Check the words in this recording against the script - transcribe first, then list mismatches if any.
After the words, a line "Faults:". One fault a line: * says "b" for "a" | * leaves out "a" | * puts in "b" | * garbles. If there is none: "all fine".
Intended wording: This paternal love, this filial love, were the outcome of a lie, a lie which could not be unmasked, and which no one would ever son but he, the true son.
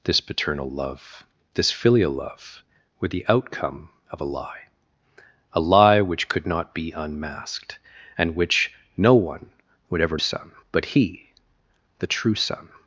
This paternal love, this filial love, were the outcome of a lie, a lie which could not be unmasked, and which no one would ever son but he, the true son.
Faults:
all fine